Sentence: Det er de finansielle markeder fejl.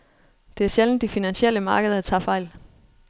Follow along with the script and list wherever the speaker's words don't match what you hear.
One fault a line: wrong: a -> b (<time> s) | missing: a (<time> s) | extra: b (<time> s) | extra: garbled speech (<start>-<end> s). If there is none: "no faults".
extra: sjældent (0.7 s)
extra: tager (2.0 s)